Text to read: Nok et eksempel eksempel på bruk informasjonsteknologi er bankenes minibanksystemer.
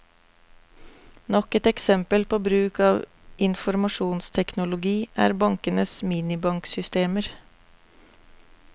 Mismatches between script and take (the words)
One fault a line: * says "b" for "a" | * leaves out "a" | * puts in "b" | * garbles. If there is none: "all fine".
* leaves out "eksempel"
* puts in "av"